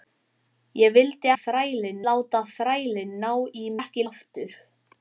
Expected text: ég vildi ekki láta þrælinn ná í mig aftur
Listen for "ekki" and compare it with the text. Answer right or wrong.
wrong